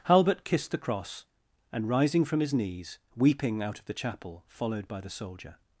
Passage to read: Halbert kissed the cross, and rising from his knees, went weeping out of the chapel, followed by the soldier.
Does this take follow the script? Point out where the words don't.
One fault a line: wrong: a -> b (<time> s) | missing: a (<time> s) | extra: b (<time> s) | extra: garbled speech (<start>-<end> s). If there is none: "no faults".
missing: went (3.0 s)